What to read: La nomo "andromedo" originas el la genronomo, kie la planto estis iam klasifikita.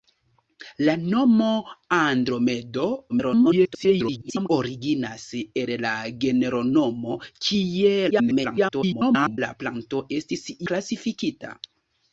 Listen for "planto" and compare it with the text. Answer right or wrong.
right